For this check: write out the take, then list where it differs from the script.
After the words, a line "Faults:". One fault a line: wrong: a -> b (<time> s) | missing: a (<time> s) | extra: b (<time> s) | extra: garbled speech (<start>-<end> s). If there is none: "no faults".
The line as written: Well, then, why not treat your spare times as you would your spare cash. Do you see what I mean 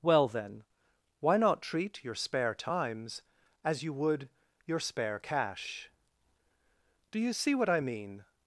Well, then, why not treat your spare times as you would your spare cash. Do you see what I mean
Faults:
no faults